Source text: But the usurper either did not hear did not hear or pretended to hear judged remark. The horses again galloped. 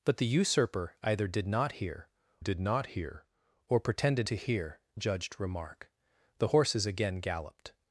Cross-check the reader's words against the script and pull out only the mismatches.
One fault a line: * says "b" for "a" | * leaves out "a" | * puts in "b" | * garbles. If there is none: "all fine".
all fine